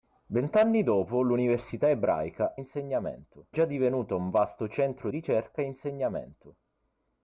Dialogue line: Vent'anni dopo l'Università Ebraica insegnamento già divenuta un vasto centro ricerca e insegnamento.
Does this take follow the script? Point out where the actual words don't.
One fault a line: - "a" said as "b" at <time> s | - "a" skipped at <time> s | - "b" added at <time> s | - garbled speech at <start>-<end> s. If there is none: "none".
none